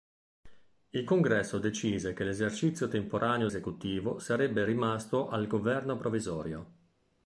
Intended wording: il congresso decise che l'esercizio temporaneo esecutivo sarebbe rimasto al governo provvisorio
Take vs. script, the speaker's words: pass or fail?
pass